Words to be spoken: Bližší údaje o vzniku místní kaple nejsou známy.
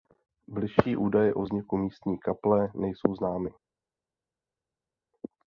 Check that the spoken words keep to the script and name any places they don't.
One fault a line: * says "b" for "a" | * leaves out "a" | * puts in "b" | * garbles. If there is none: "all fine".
all fine